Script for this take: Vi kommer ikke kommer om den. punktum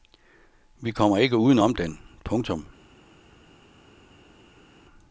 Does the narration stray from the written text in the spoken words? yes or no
yes